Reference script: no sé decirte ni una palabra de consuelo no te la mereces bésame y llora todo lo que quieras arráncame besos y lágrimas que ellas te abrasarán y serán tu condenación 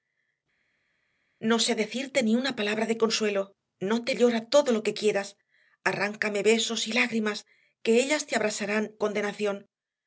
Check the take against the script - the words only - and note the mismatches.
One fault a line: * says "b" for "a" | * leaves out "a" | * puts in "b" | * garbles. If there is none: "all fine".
* leaves out "la mereces bésame"
* leaves out "y serán tu"